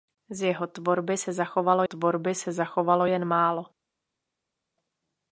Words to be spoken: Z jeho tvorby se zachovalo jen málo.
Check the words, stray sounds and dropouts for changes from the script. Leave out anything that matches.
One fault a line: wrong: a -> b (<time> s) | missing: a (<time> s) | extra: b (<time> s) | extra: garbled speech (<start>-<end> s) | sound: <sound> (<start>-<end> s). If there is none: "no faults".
extra: tvorby se zachovalo (1.8 s)